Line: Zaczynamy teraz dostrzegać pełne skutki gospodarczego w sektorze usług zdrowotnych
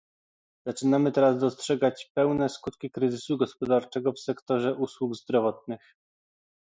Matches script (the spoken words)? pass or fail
fail